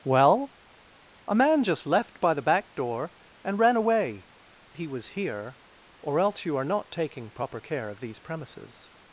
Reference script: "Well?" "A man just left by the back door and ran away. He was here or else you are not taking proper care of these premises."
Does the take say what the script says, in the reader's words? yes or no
yes